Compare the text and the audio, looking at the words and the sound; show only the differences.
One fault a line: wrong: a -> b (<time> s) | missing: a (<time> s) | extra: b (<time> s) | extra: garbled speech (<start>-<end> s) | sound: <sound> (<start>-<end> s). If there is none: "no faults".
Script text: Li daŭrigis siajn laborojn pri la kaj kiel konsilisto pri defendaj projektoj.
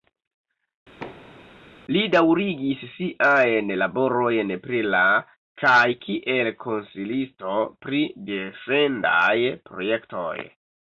sound: thud (1.0-1.6 s)